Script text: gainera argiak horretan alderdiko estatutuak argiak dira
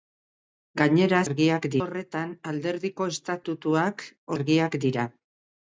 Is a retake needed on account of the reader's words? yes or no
no